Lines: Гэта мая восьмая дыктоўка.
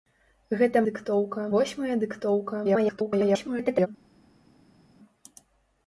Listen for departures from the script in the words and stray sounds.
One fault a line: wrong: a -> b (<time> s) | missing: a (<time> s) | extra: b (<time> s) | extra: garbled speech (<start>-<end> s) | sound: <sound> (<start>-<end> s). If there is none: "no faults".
wrong: мая -> дыктоўка (0.9 s)
extra: garbled speech (2.6-3.9 s)